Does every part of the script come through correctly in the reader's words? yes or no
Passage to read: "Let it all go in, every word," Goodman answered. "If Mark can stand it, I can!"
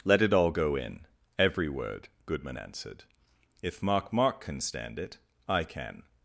no